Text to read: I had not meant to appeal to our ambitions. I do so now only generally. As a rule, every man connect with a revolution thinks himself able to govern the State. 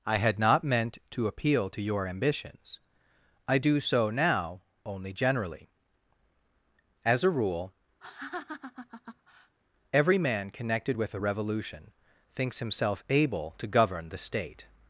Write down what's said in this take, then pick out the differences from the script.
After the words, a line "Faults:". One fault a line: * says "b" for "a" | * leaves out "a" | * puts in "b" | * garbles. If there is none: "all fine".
I had not meant to appeal to your ambitions. I do so now only generally. As a rule, every man connected with a revolution thinks himself able to govern the State.
Faults:
* says "your" for "our"
* says "connected" for "connect"